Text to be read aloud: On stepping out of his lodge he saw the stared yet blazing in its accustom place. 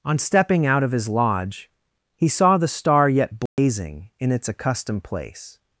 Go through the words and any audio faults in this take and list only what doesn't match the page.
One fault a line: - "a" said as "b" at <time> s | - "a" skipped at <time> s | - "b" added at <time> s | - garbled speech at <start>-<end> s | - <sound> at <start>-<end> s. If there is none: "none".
- "stared" said as "star" at 2.7 s
- dropout at 3.5-3.6 s
- "accustom" said as "accustomed" at 4.5 s